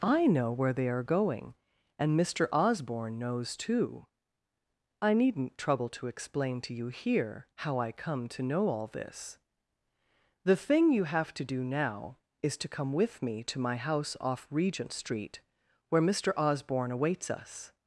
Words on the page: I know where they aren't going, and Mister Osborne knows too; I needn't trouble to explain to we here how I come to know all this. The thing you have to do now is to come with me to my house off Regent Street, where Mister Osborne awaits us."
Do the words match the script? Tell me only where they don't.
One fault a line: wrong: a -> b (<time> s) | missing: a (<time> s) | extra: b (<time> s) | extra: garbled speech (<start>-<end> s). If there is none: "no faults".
wrong: aren't -> are (0.9 s)
wrong: we -> you (6.7 s)